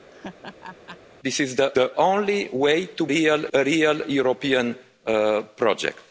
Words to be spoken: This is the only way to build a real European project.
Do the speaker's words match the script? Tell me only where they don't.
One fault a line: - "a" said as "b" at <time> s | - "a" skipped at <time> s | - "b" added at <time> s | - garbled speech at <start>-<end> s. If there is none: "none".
- "the" added at 1.7 s
- "build" said as "real" at 3.1 s